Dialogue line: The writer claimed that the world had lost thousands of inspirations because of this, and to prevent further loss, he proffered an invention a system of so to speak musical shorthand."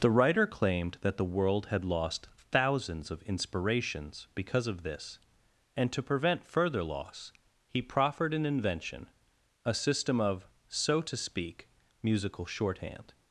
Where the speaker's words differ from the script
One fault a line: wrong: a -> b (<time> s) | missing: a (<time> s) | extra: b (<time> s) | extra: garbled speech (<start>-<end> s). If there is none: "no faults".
no faults